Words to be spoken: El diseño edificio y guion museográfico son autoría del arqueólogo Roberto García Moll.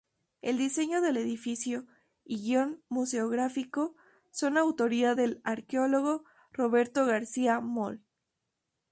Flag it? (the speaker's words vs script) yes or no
yes